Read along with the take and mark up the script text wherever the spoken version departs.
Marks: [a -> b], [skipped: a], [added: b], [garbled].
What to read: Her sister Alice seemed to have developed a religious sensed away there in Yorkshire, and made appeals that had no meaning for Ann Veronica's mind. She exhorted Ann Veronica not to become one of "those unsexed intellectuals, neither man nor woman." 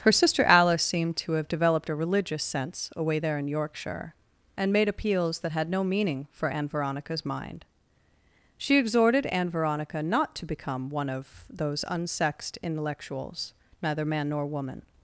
Her sister Alice seemed to have developed a religious [sensed -> sense] away there in Yorkshire, and made appeals that had no meaning for Ann Veronica's mind. She exhorted Ann Veronica not to become one of "those unsexed intellectuals, neither man nor woman."